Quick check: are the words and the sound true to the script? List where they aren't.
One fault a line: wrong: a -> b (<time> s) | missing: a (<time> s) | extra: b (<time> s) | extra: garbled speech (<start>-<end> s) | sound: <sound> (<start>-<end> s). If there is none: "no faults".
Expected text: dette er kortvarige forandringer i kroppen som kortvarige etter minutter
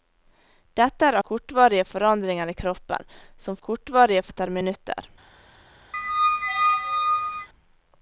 sound: squeak (5.9-7.5 s)